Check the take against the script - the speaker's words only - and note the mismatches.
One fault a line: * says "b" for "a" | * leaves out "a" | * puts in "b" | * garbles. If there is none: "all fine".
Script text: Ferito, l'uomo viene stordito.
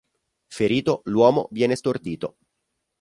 all fine